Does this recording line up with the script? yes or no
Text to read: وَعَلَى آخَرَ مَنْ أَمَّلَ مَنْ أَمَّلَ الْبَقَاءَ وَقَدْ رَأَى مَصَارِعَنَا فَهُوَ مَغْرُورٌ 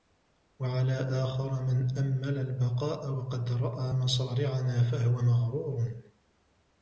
no